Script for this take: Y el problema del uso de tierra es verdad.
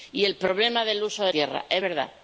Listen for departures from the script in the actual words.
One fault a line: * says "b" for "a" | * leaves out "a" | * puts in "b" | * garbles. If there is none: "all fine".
all fine